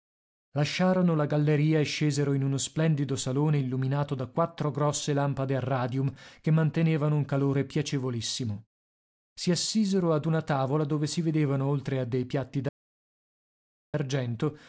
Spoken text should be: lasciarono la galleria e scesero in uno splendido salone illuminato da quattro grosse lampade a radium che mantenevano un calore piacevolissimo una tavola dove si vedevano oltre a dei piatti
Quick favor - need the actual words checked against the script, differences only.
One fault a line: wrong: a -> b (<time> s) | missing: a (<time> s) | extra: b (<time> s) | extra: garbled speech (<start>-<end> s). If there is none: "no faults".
extra: si assisero ad (9.3 s)